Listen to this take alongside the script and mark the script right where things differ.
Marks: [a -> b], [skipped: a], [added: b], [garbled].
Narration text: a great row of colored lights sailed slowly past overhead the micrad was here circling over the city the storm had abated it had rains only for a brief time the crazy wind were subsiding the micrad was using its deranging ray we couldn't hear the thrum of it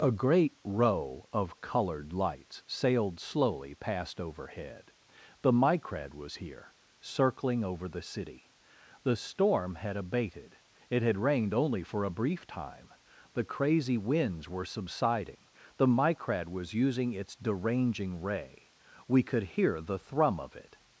a great row of colored lights sailed slowly past overhead the micrad was here circling over the city the storm had abated it had [rains -> rained] only for a brief time the crazy [wind -> winds] were subsiding the micrad was using its deranging ray we [couldn't -> could] hear the thrum of it